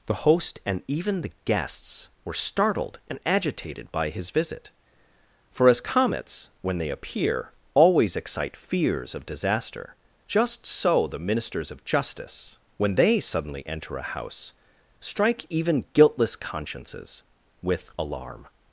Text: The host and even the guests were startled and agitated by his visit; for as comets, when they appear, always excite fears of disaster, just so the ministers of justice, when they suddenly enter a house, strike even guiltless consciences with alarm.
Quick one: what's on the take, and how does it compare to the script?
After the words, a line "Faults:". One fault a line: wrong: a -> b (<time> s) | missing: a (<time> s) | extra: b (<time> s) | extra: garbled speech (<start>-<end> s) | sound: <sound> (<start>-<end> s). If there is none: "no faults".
The host and even the guests were startled and agitated by his visit; for as comets, when they appear, always excite fears of disaster, just so the ministers of justice, when they suddenly enter a house, strike even guiltless consciences with alarm.
Faults:
no faults